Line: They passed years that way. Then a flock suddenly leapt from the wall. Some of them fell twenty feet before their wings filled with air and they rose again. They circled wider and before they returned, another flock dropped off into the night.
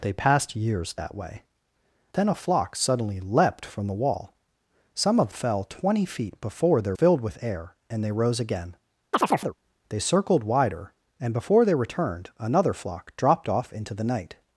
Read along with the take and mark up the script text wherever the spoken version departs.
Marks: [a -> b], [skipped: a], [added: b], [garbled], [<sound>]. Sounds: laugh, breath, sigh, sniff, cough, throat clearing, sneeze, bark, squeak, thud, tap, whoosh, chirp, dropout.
They passed years that way. Then a flock suddenly leapt from the wall. Some of [skipped: them] fell twenty feet before their [skipped: wings] filled with air and they rose again. [chirp] They circled wider and before they returned, another flock dropped off into the night.